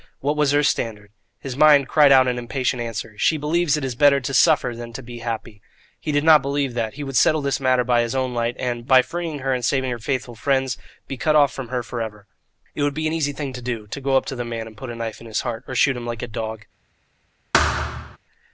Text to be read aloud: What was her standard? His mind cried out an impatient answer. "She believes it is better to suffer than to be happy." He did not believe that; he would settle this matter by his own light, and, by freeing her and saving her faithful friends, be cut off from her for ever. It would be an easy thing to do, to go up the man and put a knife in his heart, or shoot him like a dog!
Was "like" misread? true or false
false